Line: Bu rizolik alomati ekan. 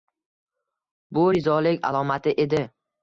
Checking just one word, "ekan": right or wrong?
wrong